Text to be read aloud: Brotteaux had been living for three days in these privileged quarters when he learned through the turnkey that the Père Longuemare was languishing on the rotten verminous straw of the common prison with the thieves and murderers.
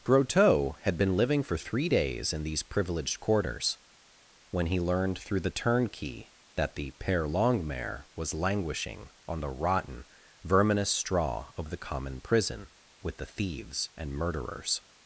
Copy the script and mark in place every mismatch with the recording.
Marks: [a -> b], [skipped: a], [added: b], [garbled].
Brotteaux had been living for three days in these privileged quarters when he learned through the turnkey that the Père Longuemare was languishing on the rotten verminous straw of the common prison with the thieves and murderers.